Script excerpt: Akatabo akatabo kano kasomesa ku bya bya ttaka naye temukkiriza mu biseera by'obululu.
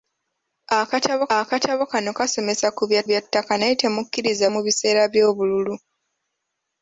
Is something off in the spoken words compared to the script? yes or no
no